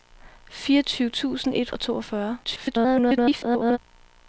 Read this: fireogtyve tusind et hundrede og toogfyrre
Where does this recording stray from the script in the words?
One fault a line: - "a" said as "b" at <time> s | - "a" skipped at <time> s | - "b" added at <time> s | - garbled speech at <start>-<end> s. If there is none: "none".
- "hundrede" skipped at 1.7 s
- garbled speech at 2.4-3.8 s